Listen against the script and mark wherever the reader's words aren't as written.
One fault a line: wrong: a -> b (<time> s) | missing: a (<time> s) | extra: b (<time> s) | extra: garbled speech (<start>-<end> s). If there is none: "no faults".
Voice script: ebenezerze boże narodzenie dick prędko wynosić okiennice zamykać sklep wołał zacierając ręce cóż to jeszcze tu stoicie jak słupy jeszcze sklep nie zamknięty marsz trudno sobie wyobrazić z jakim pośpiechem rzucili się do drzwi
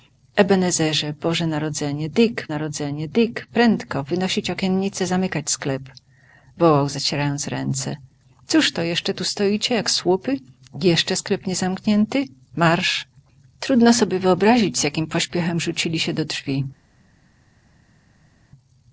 extra: narodzenie dick (2.5 s)